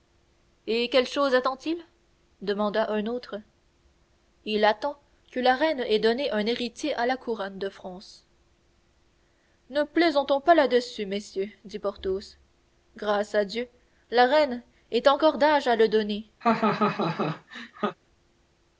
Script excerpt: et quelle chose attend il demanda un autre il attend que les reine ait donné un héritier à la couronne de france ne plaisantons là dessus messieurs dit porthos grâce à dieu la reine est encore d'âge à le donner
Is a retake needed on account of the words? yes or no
yes